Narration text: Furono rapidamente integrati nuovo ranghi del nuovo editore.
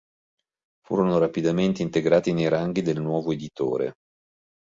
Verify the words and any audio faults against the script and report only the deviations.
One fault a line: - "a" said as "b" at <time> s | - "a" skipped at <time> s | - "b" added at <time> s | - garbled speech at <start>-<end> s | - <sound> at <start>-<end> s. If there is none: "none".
- "nuovo" said as "nei" at 2.3 s